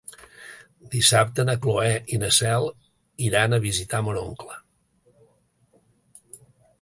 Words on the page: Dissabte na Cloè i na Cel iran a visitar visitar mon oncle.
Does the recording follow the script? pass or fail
fail